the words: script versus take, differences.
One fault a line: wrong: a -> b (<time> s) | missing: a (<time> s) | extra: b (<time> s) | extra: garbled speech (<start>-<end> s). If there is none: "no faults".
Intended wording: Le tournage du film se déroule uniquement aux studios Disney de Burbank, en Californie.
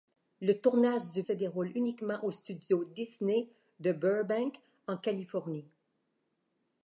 missing: film (1.2 s)